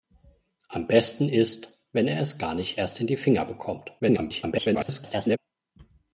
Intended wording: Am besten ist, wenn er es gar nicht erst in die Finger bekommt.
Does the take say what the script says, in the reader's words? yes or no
no